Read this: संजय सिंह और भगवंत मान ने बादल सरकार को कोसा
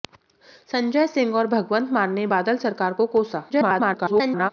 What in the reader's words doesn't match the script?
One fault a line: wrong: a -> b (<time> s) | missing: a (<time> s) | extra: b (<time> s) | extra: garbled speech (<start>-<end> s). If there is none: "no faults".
extra: garbled speech (3.5-4.5 s)